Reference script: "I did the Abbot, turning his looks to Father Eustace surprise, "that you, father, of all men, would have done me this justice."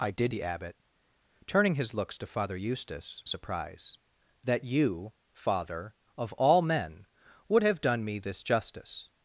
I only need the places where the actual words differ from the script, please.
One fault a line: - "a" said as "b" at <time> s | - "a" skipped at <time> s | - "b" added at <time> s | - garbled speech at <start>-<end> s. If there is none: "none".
none